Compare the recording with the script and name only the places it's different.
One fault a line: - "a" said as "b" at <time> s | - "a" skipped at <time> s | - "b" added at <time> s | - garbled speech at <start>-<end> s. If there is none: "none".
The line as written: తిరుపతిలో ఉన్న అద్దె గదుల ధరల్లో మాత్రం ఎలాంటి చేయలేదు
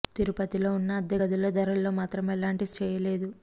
none